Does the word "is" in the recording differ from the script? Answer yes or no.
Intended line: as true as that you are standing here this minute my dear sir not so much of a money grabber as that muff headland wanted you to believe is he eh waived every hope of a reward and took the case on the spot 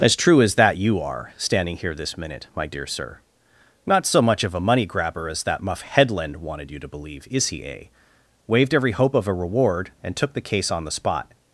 no